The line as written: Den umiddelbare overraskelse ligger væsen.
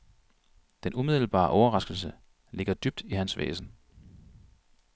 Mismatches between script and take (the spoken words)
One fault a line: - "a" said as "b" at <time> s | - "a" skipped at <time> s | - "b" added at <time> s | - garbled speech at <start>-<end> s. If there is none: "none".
- "dybt i hans" added at 2.7 s